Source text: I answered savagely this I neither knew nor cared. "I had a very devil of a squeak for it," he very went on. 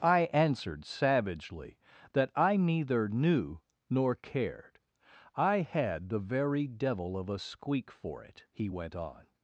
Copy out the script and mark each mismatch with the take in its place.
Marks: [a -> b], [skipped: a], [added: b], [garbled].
I answered savagely [this -> that] I neither knew nor cared. "I had [a -> the] very devil of a squeak for it," he [skipped: very] went on.